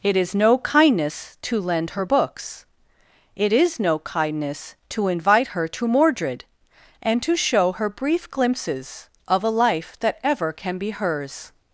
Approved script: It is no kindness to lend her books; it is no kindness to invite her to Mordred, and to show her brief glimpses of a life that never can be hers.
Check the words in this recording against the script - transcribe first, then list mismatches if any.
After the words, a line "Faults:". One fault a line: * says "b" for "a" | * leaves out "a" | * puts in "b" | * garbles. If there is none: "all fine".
It is no kindness to lend her books; it is no kindness to invite her to Mordred, and to show her brief glimpses of a life that ever can be hers.
Faults:
* says "ever" for "never"